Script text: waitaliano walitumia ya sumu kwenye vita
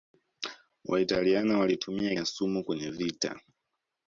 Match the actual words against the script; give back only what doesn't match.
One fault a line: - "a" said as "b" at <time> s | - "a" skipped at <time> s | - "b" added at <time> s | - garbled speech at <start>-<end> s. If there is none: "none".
none